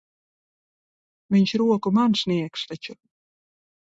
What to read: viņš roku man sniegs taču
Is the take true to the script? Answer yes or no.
yes